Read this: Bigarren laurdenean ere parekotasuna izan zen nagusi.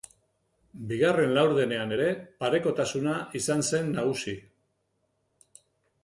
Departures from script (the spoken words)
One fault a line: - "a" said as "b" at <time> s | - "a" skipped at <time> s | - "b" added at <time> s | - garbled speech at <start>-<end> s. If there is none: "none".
none